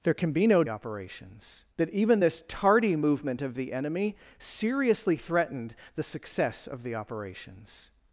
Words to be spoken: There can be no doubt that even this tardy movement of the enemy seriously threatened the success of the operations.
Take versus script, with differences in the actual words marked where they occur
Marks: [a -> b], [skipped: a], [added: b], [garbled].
There can be no [doubt -> operations] that even this tardy movement of the enemy seriously threatened the success of the operations.